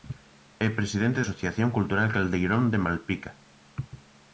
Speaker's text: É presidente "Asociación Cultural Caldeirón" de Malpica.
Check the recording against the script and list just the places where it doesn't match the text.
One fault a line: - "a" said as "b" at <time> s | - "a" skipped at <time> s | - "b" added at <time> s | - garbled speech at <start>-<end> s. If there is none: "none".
none